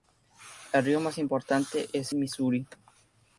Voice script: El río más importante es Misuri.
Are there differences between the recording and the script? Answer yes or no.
no